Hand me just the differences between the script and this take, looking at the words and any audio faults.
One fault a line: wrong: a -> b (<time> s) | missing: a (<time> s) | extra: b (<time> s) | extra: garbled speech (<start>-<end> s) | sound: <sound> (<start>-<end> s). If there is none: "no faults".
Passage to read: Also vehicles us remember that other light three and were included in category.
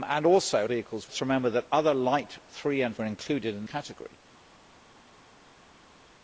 no faults